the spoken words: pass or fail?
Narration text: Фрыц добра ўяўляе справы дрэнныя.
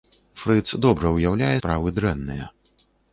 pass